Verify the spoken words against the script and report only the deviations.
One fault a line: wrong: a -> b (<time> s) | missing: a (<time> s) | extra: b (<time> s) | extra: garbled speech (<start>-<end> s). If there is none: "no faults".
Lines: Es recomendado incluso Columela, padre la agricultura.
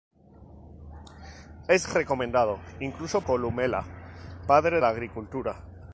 no faults